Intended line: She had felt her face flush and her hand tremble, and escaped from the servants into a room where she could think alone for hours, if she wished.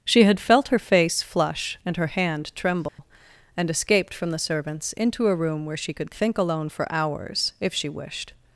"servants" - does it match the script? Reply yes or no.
yes